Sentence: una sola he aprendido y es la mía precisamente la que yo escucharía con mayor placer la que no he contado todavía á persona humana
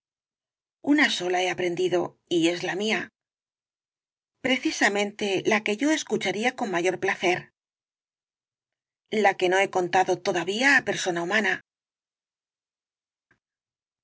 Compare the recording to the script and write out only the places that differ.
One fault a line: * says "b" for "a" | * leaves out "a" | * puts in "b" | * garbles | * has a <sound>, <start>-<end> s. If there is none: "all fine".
all fine